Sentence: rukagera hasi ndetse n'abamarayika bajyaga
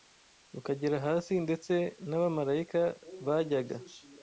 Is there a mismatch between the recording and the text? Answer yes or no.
no